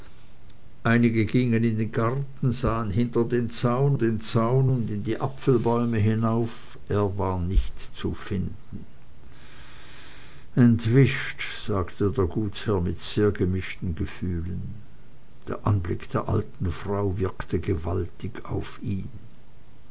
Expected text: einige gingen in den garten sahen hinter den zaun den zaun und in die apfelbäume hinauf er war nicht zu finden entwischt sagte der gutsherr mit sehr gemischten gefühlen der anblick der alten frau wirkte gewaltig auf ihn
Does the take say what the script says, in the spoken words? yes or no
yes